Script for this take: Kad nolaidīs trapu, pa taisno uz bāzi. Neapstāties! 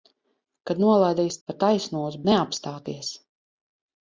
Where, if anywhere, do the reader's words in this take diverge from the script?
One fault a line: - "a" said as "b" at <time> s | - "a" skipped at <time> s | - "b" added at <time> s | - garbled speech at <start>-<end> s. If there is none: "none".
- "trapu" skipped at 1.4 s
- "bāzi" skipped at 2.2 s